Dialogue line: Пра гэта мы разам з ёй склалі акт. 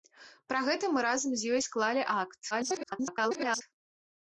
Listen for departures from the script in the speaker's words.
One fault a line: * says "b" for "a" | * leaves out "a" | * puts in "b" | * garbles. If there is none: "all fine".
* garbles